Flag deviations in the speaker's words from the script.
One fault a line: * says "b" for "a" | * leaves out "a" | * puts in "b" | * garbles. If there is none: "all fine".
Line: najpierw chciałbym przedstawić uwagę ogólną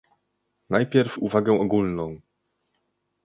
* leaves out "chciałbym przedstawić"